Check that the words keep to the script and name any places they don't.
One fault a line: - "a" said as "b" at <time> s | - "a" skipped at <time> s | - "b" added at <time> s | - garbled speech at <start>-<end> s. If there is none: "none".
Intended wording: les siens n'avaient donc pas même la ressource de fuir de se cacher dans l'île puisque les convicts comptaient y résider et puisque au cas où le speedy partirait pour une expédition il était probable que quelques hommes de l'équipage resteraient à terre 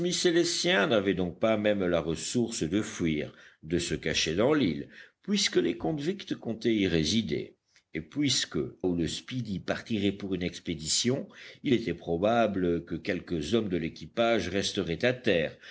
- "au cas" skipped at 8.6 s